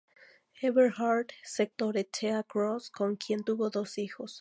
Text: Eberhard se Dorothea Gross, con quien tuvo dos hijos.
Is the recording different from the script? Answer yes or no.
no